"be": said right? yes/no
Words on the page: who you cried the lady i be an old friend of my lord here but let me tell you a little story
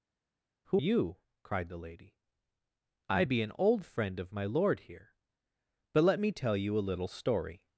yes